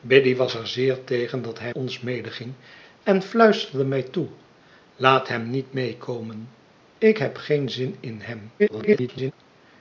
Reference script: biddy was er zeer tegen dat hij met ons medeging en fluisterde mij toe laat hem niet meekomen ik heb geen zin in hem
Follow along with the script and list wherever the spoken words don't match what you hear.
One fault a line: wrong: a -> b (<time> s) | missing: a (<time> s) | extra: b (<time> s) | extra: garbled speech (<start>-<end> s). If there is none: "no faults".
missing: met (1.7 s)
extra: garbled speech (8.6-9.3 s)